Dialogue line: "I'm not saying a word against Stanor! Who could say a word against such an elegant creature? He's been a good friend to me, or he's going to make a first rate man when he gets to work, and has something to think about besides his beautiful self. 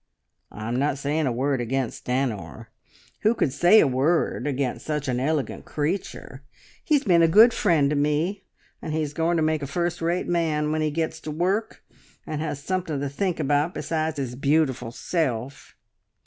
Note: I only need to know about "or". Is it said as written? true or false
false